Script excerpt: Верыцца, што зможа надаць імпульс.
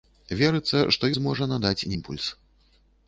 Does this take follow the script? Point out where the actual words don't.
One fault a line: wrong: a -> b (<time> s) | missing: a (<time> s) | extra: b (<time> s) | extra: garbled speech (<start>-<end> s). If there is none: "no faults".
no faults